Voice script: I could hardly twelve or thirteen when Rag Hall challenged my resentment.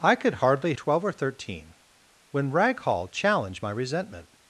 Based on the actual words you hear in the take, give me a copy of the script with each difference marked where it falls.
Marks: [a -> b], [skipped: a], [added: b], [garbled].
I could hardly twelve or thirteen when Rag Hall challenged my resentment.